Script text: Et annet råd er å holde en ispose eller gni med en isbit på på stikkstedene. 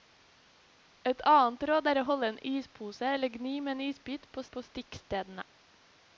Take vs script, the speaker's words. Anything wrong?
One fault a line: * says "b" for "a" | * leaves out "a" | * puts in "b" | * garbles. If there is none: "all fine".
all fine